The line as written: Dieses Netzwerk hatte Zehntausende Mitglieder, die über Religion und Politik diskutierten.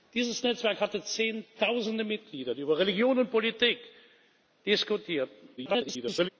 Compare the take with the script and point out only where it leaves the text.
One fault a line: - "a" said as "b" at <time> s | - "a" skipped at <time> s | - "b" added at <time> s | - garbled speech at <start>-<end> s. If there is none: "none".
- garbled speech at 5.6-6.3 s